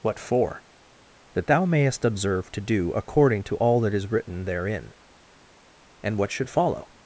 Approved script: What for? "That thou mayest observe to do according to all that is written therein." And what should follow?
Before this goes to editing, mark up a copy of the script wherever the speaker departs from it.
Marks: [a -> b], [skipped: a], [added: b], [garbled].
What for? "That thou mayest observe to do according to all that is written therein." And what should follow?